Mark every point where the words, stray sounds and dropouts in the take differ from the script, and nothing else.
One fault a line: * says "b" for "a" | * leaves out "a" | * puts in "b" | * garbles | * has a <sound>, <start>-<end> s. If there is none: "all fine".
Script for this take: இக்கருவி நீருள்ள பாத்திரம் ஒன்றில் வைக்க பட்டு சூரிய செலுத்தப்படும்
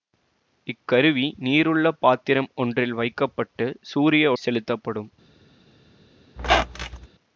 * has a squeak, 6.4-7.1 s